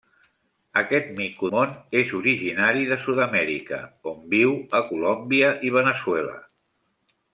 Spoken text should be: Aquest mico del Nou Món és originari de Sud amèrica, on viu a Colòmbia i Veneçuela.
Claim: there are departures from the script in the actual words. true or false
true